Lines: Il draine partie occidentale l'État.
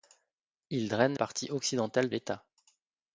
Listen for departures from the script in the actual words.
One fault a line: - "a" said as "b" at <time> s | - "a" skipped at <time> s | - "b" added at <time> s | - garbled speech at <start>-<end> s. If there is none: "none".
none